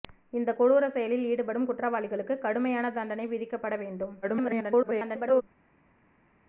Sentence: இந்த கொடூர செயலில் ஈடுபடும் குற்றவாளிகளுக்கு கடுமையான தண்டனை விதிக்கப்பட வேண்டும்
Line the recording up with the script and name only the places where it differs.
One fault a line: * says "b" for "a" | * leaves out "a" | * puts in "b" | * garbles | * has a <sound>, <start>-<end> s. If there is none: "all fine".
* garbles